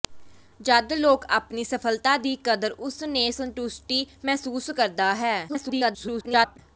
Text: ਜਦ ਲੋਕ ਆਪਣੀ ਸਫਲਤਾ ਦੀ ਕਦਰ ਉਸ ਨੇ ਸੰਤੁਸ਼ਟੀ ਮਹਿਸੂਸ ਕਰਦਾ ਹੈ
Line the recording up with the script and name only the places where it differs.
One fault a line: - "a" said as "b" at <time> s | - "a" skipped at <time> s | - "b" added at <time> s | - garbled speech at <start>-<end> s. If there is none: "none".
- garbled speech at 5.5-6.6 s